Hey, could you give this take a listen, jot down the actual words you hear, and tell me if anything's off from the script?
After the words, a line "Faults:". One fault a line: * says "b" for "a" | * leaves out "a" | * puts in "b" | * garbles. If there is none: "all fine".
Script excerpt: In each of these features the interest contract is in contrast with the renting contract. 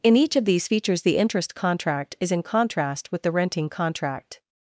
In each of these features the interest contract is in contrast with the renting contract.
Faults:
all fine